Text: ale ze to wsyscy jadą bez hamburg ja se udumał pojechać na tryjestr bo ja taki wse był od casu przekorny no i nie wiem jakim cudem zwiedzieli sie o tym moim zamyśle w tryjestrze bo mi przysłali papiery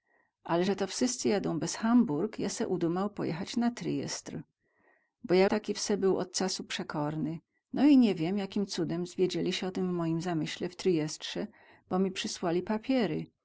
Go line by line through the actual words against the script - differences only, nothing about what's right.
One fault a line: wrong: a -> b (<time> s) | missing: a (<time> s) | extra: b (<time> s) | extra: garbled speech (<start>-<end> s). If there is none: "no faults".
no faults